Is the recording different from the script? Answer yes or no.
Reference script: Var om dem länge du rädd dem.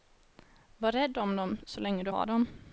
yes